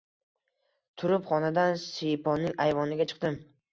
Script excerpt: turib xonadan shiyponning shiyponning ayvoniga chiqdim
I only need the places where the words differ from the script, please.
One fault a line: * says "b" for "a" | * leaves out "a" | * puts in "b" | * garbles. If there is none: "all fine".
* leaves out "shiyponning"